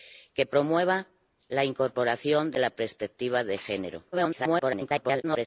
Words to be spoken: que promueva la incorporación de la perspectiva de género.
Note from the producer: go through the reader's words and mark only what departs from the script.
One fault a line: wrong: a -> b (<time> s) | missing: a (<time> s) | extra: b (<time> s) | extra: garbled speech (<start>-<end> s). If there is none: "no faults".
extra: garbled speech (4.1-5.5 s)